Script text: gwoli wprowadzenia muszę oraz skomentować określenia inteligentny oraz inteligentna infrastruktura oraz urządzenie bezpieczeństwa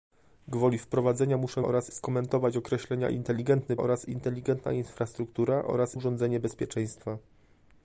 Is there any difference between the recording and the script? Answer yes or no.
no